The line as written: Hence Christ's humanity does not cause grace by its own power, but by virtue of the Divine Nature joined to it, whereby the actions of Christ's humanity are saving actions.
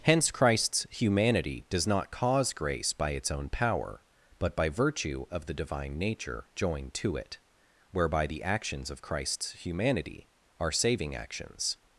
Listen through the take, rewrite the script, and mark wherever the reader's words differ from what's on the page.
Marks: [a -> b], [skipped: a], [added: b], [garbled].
Hence Christ's humanity does not cause grace by its own power, but by virtue of the Divine Nature joined to it, whereby the actions of Christ's humanity are saving actions.